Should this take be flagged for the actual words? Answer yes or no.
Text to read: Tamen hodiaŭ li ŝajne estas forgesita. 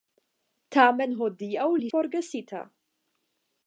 yes